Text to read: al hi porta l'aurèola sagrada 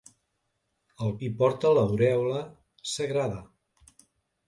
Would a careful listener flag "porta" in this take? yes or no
no